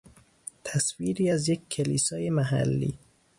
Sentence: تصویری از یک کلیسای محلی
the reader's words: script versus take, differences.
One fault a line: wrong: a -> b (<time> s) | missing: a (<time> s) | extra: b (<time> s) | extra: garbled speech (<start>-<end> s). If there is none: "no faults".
no faults